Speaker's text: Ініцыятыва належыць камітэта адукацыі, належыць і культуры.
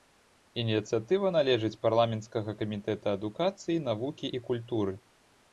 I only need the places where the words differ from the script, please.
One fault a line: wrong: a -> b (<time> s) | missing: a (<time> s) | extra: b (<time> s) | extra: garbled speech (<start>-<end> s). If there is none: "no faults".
extra: парламенцкага (1.8 s)
wrong: належыць -> навукі (3.9 s)